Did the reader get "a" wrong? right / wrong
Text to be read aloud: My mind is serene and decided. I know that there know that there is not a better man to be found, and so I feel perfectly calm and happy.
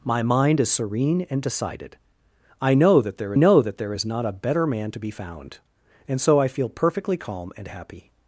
right